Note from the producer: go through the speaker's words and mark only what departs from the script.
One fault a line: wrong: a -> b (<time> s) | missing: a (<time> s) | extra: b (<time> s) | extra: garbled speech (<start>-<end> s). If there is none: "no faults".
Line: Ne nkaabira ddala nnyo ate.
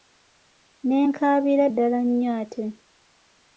no faults